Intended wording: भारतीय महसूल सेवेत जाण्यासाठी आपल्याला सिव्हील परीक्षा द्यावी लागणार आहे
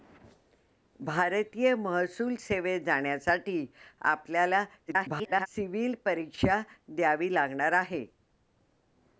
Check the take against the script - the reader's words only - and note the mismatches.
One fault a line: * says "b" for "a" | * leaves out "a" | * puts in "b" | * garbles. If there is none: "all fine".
* garbles